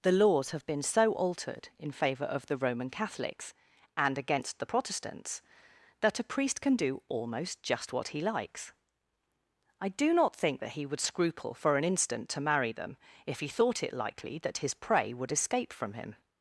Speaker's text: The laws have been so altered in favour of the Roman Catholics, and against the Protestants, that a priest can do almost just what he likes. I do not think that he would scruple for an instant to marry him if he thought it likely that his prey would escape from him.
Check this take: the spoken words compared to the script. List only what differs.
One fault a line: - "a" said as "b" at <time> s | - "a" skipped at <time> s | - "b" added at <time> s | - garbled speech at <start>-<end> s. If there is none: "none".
- "him" said as "them" at 12.7 s